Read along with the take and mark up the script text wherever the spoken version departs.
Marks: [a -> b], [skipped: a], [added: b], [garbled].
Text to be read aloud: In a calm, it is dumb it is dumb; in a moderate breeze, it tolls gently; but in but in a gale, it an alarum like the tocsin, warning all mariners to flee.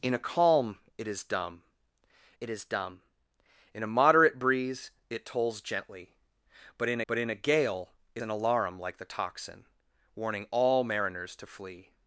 In a calm, it is dumb it is dumb; in a moderate breeze, it tolls gently; but in but in a gale, it an alarum like the tocsin, warning all mariners to flee.